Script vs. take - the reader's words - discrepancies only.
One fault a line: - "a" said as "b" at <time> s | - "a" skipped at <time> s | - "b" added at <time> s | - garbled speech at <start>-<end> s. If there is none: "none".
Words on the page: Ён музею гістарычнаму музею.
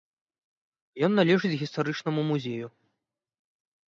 - "музею" said as "належыць" at 1.2 s